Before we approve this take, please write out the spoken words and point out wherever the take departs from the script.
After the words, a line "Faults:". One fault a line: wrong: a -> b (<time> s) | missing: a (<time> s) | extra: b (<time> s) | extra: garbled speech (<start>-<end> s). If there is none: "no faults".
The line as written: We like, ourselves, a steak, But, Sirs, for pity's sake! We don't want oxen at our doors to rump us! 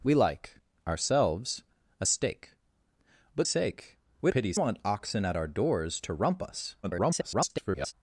We like, ourselves, a steak, But, Sake! We pity's want oxen at our doors to rump us! [garbled]
Faults:
missing: Sirs for pity's (3.5 s)
wrong: don't -> pity's (4.3 s)
extra: garbled speech (6.8-7.9 s)